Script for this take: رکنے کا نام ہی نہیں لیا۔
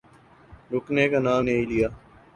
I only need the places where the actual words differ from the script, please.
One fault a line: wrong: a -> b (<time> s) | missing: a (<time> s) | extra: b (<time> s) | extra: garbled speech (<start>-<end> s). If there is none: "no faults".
missing: ہی (1.4 s)